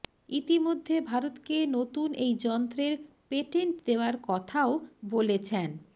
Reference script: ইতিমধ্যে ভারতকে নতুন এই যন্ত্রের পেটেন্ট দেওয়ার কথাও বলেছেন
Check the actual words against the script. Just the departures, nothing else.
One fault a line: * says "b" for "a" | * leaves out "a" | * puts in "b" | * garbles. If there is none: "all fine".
all fine